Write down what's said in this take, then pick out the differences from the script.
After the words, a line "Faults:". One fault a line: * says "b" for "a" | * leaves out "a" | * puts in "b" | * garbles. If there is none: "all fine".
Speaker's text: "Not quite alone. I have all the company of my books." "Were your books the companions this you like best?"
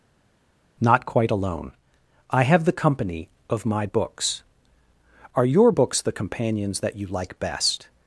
"Not quite alone. I have the company of my books." "Are your books the companions that you like best?"
Faults:
* leaves out "all"
* says "Are" for "Were"
* says "that" for "this"